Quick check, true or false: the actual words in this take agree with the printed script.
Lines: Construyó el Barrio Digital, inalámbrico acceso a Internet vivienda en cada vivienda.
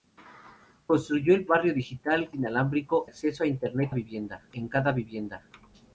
true